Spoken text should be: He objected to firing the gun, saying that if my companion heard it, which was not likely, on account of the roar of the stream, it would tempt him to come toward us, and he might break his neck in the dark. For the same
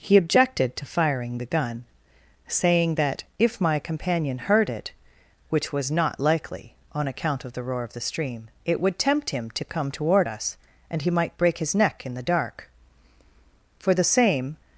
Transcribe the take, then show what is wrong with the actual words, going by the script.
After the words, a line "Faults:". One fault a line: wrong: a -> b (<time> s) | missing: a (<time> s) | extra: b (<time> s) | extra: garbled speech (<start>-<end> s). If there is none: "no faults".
He objected to firing the gun, saying that if my companion heard it, which was not likely, on account of the roar of the stream, it would tempt him to come toward us, and he might break his neck in the dark. For the same
Faults:
no faults